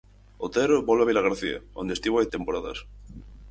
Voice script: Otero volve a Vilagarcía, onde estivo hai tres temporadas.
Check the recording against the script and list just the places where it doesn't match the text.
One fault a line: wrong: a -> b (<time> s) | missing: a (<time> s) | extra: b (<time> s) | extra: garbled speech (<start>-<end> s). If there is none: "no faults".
missing: tres (2.3 s)